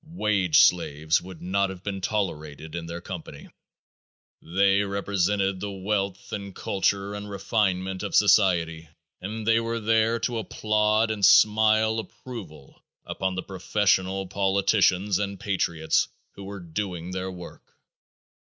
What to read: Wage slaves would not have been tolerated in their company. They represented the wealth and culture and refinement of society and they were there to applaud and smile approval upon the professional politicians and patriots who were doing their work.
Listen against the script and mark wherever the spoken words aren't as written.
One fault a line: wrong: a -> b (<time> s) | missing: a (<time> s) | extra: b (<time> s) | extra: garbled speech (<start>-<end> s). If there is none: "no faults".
no faults